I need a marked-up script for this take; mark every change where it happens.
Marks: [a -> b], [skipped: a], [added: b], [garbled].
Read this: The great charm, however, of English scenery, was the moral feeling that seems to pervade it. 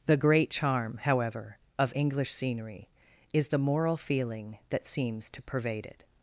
The great charm, however, of English scenery, [was -> is] the moral feeling that seems to pervade it.